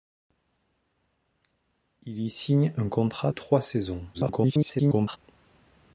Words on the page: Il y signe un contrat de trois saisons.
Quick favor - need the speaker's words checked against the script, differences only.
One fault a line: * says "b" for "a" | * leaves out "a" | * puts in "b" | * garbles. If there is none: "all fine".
* leaves out "de"
* garbles